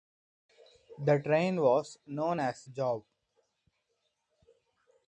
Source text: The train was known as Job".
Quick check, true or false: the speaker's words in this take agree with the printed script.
true